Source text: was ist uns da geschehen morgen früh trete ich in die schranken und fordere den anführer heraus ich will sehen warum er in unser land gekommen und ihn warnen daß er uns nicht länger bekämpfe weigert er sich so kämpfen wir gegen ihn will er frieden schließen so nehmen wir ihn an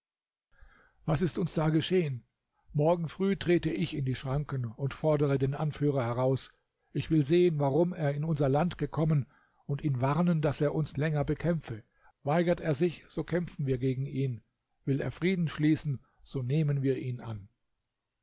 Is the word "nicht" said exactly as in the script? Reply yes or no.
no